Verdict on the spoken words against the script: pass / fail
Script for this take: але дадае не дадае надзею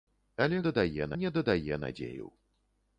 pass